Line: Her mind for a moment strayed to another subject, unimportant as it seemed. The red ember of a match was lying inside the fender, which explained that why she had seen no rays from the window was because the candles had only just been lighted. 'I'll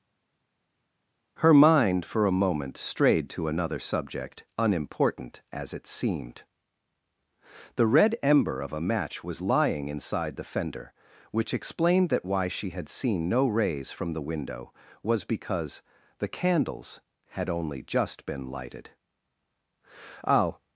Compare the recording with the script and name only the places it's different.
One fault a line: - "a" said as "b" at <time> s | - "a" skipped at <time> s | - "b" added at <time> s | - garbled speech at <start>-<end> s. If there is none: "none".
none